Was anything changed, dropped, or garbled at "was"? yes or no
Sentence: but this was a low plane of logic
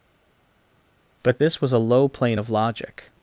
no